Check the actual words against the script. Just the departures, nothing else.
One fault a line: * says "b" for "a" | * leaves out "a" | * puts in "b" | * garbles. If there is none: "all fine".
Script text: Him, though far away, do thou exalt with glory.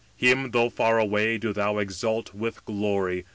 all fine